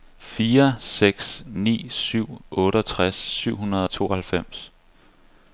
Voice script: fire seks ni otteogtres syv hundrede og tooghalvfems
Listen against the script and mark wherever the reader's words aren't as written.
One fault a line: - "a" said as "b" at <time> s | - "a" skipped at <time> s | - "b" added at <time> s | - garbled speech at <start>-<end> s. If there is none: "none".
- "syv" added at 1.9 s